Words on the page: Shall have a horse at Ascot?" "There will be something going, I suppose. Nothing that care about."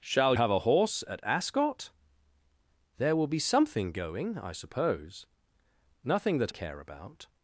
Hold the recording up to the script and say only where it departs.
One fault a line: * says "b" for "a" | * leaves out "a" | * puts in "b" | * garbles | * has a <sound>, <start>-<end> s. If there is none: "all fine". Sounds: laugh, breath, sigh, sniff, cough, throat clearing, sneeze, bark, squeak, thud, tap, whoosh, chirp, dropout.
all fine